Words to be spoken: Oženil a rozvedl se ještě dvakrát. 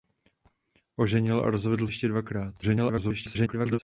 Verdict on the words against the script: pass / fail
fail